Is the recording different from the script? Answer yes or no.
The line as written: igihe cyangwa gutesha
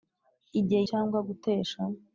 no